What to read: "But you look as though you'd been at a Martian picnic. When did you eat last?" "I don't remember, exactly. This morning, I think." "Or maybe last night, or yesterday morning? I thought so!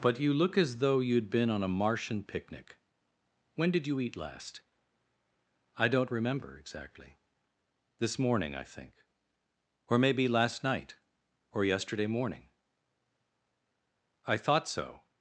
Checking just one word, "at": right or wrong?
wrong